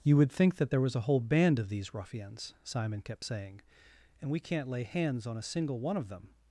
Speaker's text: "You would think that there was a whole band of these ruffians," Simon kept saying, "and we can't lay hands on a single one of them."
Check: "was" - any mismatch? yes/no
no